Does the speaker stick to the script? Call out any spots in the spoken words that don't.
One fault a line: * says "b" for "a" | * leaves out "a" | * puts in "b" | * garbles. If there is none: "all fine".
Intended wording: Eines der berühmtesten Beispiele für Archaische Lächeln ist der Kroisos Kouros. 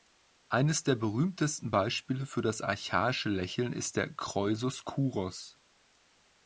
* puts in "das"